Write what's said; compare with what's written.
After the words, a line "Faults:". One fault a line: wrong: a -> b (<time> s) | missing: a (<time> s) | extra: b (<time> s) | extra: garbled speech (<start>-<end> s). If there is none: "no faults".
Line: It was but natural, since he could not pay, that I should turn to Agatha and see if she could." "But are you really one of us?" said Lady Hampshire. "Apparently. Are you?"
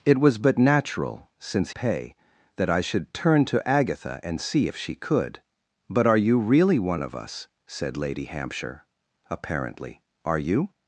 It was but natural, since pay, that I should turn to Agatha and see if she could." "But are you really one of us?" said Lady Hampshire. "Apparently. Are you?"
Faults:
missing: he could not (1.7 s)